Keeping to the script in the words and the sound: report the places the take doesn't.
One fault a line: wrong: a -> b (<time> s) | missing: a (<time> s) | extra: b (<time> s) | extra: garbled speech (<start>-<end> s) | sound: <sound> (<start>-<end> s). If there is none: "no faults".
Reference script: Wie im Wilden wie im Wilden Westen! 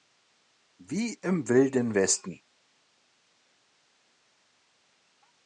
missing: wie im Wilden (1.9 s)